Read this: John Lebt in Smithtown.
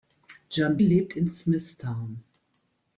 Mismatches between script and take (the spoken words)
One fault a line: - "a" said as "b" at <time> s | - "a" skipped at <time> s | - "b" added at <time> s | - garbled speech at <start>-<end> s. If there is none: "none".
none